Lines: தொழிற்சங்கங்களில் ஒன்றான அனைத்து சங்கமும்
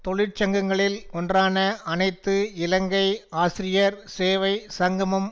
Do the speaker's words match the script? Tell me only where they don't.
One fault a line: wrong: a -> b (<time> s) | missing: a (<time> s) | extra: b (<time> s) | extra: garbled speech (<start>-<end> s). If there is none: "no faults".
extra: இலங்கை ஆசிரியர் சேவை (2.6 s)